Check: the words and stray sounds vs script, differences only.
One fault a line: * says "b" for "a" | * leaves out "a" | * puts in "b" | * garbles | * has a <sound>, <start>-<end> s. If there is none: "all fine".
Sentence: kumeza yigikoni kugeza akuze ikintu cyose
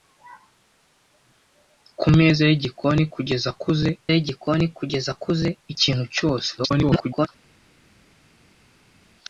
* puts in "yigikoni kugeza akuze"
* garbles